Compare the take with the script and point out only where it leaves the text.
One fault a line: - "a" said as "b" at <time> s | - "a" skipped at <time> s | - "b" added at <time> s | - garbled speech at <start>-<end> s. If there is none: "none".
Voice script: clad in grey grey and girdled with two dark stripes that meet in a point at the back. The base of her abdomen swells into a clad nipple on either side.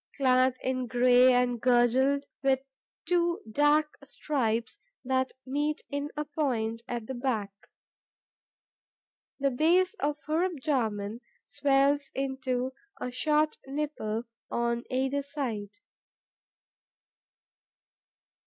- "grey" skipped at 1.3 s
- "clad" said as "short" at 13.1 s